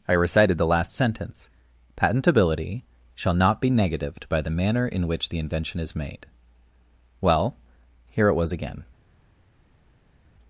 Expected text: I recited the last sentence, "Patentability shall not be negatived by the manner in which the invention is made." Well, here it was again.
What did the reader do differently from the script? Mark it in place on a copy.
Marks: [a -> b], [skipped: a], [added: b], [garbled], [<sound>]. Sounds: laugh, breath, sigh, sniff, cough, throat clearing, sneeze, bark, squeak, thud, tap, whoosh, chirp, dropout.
I recited the last sentence, "Patentability shall not be negatived by the manner in which the invention is made." Well, here it was again.